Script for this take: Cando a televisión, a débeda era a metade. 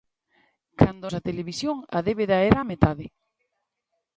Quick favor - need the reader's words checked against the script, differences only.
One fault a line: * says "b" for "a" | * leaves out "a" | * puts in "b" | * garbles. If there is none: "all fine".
all fine